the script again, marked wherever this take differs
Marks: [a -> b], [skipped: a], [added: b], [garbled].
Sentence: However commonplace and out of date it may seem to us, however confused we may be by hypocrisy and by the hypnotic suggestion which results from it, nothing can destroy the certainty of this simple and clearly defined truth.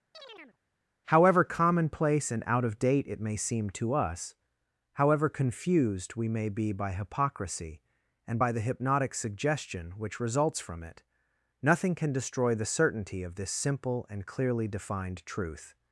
However commonplace and out of date it may seem to us, however confused we may be by hypocrisy and by the hypnotic suggestion which results from it, nothing can destroy the certainty of this simple and clearly defined truth.